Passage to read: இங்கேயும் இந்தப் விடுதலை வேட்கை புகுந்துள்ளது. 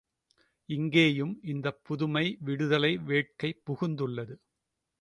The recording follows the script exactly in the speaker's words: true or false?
false